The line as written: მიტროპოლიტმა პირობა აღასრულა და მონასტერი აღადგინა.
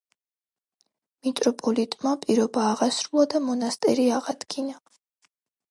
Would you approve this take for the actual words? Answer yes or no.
yes